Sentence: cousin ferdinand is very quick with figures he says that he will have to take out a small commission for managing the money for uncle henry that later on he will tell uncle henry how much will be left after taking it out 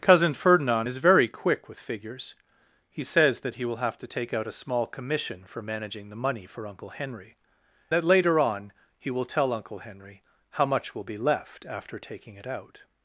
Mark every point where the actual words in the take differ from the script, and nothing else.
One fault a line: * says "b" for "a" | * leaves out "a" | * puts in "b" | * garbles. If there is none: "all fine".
all fine